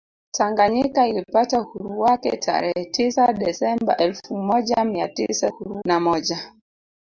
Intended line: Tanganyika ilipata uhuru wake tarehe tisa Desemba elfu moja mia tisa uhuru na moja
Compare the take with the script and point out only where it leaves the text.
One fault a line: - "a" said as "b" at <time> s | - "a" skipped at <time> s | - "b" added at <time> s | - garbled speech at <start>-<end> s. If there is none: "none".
none